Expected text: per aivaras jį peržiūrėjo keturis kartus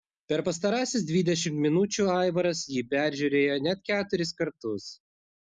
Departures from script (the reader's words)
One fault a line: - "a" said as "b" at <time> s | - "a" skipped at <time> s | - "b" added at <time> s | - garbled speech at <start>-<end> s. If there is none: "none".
- "pastarąsias dvidešimt minučių" added at 0.4 s
- "net" added at 3.7 s